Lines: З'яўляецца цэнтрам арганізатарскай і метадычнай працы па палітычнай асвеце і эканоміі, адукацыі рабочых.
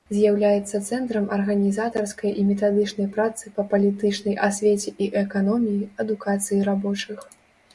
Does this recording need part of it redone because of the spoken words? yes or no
no